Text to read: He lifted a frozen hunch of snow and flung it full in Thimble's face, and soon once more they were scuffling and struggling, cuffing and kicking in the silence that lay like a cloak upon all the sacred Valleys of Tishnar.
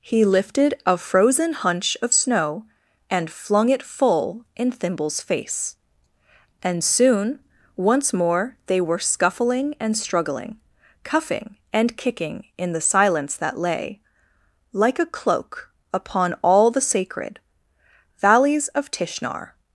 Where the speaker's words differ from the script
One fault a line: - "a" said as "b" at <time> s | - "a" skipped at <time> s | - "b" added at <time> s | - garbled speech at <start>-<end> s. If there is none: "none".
none